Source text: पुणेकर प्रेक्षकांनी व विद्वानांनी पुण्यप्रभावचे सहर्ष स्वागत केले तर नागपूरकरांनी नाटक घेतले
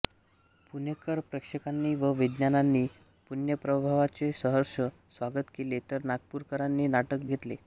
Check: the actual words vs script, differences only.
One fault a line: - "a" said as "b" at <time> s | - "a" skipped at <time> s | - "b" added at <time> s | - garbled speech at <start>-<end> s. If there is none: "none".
none